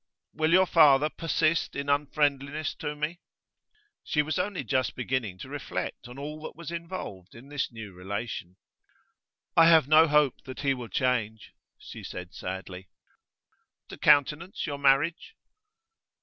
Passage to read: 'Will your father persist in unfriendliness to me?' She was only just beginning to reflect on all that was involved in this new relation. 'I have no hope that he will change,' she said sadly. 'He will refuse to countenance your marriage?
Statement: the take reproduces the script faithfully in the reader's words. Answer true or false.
false